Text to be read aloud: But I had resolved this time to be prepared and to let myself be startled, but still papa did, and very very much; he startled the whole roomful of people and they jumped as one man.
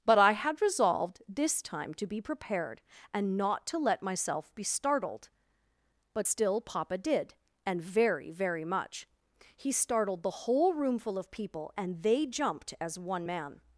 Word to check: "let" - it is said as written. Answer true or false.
true